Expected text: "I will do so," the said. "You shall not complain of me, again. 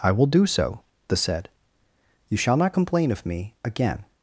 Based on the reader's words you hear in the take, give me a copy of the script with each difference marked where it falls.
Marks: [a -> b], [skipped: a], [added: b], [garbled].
"I will do so," the said. "You shall not complain of me, again.